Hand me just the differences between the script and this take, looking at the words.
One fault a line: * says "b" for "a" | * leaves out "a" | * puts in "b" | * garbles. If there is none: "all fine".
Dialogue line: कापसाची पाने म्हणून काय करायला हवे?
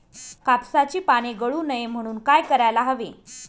* puts in "गळू नये"